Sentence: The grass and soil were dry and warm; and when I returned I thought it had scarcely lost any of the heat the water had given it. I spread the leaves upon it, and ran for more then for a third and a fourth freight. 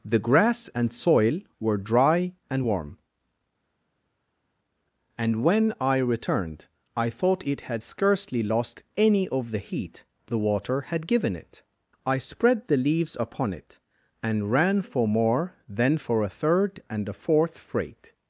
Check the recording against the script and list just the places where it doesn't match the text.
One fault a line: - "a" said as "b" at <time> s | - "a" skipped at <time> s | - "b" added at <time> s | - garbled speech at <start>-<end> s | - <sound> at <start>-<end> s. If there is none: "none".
none